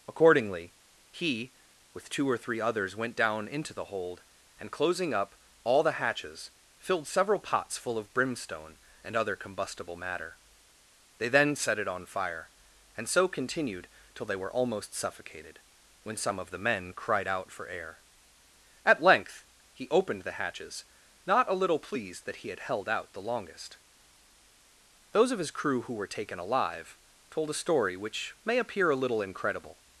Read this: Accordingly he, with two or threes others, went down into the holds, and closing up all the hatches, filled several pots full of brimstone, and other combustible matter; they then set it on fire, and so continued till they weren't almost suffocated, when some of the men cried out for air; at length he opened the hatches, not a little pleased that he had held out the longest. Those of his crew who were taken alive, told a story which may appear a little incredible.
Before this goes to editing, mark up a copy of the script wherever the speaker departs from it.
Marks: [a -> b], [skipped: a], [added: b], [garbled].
Accordingly he, with two or [threes -> three] others, went down into the [holds, -> hold] and closing up all the hatches, filled several pots full of brimstone, and other combustible matter; they then set it on fire, and so continued till they [weren't -> were] almost suffocated, when some of the men cried out for air; at length he opened the hatches, not a little pleased that he had held out the longest. Those of his crew who were taken alive, told a story which may appear a little incredible.